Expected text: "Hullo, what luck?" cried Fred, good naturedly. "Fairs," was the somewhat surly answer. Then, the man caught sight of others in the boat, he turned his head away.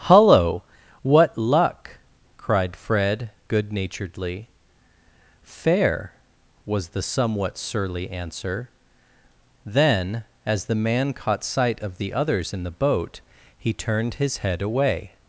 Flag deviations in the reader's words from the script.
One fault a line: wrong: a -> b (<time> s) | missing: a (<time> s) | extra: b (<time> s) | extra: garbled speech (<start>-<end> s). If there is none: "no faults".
wrong: Fairs -> Fair (5.4 s)
extra: as (10.5 s)
extra: the (12.0 s)